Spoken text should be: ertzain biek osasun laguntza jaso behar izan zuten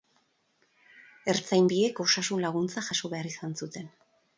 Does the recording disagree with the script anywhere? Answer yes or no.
no